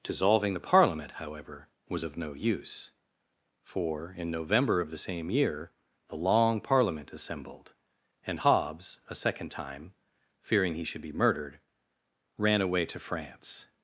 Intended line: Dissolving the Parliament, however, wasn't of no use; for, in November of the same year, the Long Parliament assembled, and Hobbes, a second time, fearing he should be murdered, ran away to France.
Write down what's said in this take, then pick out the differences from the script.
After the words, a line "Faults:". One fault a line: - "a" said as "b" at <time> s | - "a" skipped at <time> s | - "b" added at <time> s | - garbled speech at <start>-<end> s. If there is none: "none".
Dissolving the Parliament, however, was of no use; for, in November of the same year, the Long Parliament assembled, and Hobbes, a second time, fearing he should be murdered, ran away to France.
Faults:
- "wasn't" said as "was" at 1.9 s